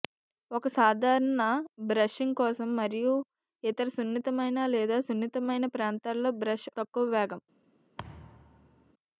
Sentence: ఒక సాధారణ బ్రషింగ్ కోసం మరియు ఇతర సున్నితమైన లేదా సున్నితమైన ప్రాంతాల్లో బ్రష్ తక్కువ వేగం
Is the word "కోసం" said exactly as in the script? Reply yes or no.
yes